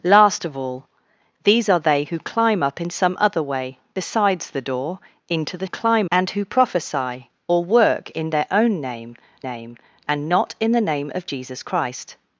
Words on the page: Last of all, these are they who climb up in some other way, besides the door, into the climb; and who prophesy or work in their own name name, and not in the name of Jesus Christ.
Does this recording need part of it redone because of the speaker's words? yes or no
no